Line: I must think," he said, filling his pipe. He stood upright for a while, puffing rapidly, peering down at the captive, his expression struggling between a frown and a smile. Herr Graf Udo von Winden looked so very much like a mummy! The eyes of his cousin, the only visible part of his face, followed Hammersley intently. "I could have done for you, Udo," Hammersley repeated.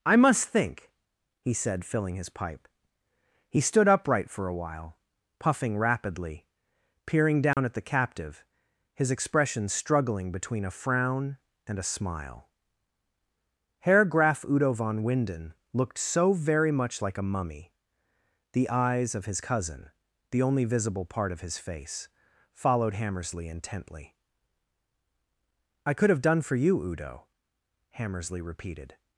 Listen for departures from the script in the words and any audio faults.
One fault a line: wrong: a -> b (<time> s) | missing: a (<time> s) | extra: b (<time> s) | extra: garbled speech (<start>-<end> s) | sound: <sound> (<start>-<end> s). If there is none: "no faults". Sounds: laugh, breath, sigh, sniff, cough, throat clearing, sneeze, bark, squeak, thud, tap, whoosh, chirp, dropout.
sound: dropout (7.5-7.6 s)